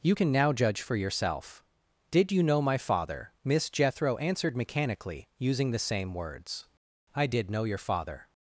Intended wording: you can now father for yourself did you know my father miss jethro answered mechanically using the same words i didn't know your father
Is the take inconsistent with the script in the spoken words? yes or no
yes